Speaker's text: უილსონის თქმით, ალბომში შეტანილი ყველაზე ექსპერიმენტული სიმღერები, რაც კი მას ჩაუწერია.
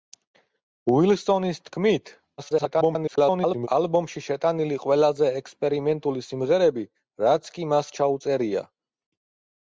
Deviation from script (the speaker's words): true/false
true